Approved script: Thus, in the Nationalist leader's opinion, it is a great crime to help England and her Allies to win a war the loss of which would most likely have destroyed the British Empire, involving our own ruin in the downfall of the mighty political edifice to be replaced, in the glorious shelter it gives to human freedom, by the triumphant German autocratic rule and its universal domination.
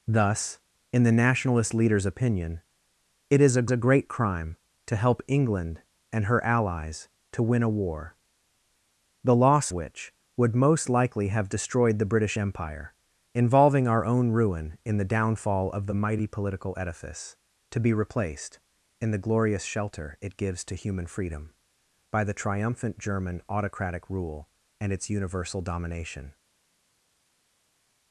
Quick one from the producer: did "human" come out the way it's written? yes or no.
yes